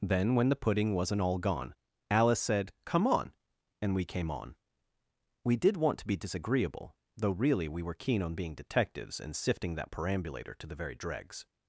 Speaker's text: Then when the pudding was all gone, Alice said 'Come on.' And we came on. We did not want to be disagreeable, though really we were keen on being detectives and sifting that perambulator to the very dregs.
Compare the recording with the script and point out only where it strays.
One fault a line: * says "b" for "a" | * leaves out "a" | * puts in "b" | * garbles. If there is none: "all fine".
* says "wasn't" for "was"
* leaves out "not"